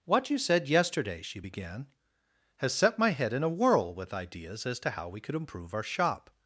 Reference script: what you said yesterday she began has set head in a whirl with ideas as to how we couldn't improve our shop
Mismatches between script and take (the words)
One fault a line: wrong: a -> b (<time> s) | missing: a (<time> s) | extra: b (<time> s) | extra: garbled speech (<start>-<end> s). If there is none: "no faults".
extra: my (3.0 s)
wrong: couldn't -> could (5.2 s)